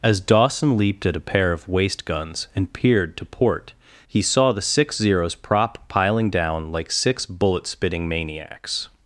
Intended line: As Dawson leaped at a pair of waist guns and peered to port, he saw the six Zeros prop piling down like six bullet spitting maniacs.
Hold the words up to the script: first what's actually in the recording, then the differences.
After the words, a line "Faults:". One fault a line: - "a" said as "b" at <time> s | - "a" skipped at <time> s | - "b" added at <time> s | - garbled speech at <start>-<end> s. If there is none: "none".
As Dawson leaped at a pair of waist guns and peered to port, he saw the six Zeros prop piling down like six bullet spitting maniacs.
Faults:
none